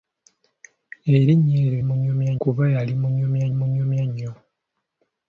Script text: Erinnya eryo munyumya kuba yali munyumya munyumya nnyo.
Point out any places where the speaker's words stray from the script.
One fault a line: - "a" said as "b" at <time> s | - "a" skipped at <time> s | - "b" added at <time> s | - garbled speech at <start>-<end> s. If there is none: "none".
none